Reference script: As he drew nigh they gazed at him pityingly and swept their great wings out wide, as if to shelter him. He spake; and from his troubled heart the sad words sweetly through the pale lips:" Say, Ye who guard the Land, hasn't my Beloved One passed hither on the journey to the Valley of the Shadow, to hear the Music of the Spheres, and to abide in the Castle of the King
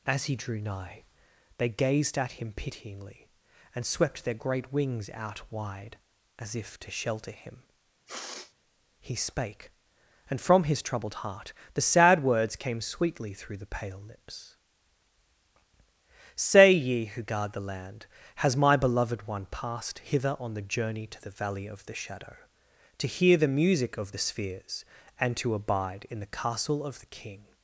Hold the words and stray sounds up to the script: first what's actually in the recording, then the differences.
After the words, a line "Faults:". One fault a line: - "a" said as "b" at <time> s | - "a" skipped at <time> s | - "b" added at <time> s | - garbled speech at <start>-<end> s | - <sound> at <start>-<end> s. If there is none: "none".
As he drew nigh they gazed at him pityingly and swept their great wings out wide, as if to shelter him. He spake; and from his troubled heart the sad words came sweetly through the pale lips:" Say, Ye who guard the Land, has my Beloved One passed hither on the journey to the Valley of the Shadow, to hear the Music of the Spheres, and to abide in the Castle of the King
Faults:
- sniff at 8.1-8.5 s
- "came" added at 12.6 s
- "hasn't" said as "has" at 18.4 s